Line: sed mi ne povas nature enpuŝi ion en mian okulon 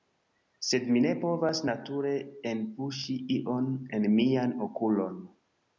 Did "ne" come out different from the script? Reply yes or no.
no